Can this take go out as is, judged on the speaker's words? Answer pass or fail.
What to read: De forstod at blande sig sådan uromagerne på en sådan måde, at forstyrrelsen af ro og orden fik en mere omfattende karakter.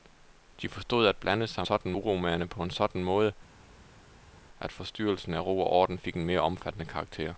pass